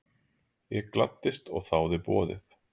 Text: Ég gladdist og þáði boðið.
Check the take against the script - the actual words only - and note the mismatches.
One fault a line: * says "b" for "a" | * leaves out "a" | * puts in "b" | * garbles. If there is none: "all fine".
all fine